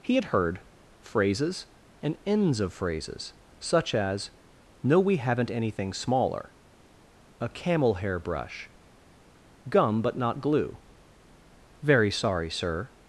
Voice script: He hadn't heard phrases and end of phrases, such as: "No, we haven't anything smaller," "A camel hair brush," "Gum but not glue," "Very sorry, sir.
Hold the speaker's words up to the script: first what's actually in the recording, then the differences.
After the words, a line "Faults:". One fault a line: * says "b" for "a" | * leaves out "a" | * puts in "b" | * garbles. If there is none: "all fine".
He had heard phrases and ends of phrases, such as: "No, we haven't anything smaller," "A camel hair brush," "Gum but not glue," "Very sorry, sir.
Faults:
* says "had" for "hadn't"
* says "ends" for "end"